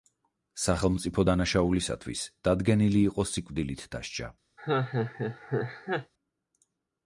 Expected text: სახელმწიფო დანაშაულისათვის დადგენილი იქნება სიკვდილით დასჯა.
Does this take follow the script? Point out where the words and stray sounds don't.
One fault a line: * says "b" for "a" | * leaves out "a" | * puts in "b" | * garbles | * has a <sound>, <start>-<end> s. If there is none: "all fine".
* says "იყო" for "იქნება"
* has a laugh, 4.6-6.1 s